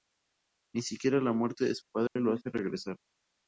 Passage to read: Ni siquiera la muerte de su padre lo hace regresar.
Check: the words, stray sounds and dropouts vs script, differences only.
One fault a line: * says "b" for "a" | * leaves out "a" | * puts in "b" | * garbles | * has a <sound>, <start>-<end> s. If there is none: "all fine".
* has a dropout, 2.1-2.2 s